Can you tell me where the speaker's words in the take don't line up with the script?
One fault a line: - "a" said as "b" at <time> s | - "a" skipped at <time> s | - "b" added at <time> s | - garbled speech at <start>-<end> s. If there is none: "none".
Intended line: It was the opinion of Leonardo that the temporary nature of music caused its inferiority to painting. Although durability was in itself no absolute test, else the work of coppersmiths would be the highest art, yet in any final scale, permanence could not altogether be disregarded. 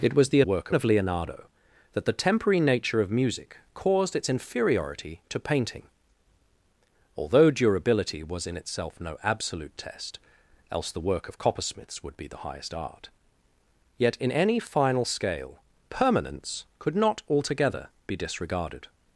- "opinion" said as "work" at 0.4 s